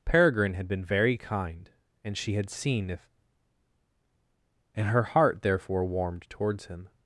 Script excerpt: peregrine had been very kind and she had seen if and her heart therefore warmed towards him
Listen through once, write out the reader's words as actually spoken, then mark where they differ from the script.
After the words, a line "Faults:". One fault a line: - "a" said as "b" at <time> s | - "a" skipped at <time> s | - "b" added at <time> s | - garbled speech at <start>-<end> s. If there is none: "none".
peregrine had been very kind and she had seen if and her heart therefore warmed towards him
Faults:
none